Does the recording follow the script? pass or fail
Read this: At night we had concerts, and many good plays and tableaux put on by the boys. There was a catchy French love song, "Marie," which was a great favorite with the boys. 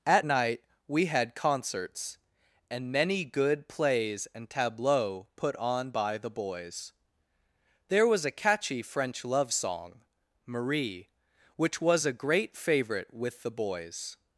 pass